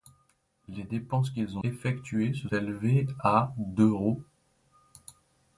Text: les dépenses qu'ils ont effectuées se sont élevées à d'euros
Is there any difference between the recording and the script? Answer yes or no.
yes